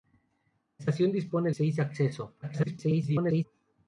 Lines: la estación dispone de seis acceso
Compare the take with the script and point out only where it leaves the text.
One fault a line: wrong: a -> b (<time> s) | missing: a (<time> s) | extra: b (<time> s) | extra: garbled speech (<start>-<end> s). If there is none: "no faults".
missing: de (1.5 s)
extra: garbled speech (2.4-3.4 s)